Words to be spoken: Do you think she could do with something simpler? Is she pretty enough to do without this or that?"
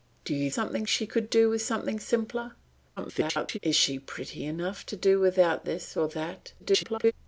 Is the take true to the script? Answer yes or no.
no